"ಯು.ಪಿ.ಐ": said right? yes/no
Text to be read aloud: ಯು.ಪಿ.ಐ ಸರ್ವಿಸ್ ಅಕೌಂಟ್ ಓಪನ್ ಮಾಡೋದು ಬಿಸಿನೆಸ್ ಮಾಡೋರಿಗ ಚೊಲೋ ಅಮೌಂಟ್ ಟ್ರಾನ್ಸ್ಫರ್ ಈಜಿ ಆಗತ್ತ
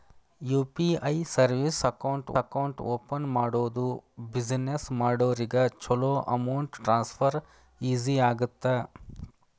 yes